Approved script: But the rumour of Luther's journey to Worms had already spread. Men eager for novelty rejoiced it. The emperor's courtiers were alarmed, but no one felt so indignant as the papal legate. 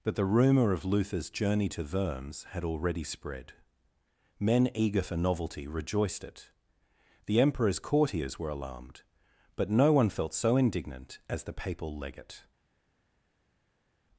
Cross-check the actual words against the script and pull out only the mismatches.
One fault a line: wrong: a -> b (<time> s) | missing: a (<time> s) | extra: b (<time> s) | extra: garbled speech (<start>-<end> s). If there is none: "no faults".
no faults